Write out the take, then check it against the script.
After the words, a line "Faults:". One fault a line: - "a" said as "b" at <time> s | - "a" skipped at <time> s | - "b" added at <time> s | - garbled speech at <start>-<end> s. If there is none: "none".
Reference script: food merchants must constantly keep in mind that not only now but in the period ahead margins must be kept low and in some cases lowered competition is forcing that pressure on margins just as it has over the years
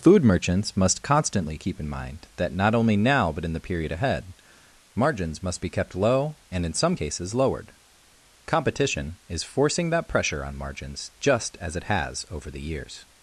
food merchants must constantly keep in mind that not only now but in the period ahead margins must be kept low and in some cases lowered competition is forcing that pressure on margins just as it has over the years
Faults:
none